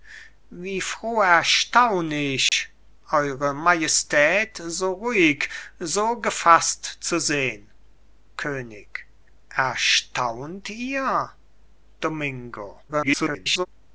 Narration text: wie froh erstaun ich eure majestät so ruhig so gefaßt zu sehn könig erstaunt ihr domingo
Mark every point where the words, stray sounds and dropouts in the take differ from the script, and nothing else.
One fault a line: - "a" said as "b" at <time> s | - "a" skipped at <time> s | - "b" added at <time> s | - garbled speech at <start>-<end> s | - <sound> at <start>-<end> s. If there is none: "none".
- dropout at 2.5-2.5 s
- garbled speech at 12.9-13.7 s